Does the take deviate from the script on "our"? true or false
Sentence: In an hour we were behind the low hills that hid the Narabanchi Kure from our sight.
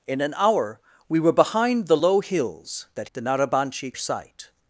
true